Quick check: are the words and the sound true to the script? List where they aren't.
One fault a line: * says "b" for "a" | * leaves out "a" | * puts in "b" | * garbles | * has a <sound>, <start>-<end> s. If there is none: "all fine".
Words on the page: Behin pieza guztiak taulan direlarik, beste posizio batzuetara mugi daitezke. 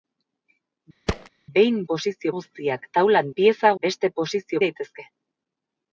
* has a thud, 1.1-1.3 s
* says "posizio" for "pieza"
* says "pieza" for "direlarik"
* leaves out "batzuetara mugi"